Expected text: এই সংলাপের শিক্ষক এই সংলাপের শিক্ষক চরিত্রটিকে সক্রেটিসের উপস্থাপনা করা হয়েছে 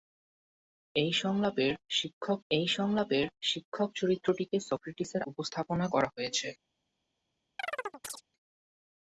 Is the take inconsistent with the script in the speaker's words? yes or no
no